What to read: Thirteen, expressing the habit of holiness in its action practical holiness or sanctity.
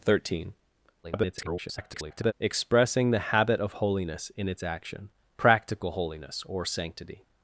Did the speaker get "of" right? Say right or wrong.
right